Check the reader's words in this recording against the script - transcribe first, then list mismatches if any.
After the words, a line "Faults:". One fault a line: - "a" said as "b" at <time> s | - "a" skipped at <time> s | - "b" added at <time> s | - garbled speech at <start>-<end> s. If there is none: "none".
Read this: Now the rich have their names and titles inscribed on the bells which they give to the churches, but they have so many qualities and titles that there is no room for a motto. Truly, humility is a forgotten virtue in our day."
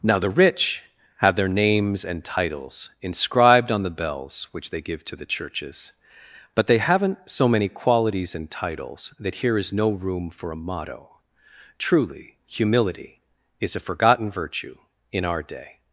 Now the rich have their names and titles inscribed on the bells which they give to the churches, but they haven't so many qualities and titles that here is no room for a motto. Truly, humility is a forgotten virtue in our day."
Faults:
- "have" said as "haven't" at 6.8 s
- "there" said as "here" at 9.4 s